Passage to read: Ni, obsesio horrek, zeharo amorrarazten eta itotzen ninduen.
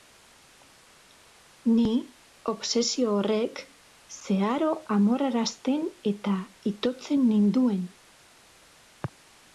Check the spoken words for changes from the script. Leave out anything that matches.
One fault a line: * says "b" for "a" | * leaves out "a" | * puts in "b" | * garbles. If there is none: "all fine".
all fine